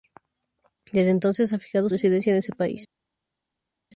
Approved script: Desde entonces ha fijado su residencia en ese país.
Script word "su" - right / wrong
wrong